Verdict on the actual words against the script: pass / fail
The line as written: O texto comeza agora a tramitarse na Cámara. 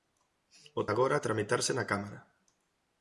fail